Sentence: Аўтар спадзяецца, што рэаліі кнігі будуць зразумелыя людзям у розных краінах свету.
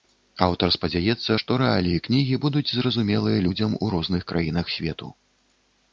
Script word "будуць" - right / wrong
right